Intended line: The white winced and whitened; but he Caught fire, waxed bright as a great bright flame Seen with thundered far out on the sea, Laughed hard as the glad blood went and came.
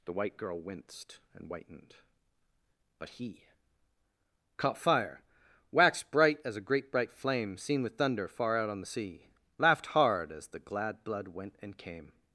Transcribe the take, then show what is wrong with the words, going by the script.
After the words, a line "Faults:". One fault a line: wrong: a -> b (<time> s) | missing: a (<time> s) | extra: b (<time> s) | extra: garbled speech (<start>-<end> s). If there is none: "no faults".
The white girl winced and whitened; but he Caught fire, waxed bright as a great bright flame Seen with thunder far out on the sea, Laughed hard as the glad blood went and came.
Faults:
extra: girl (0.4 s)
wrong: thundered -> thunder (8.0 s)